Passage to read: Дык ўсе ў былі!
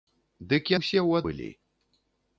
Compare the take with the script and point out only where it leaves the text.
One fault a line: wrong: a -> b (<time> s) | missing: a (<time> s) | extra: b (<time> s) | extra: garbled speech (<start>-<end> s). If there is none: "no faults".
no faults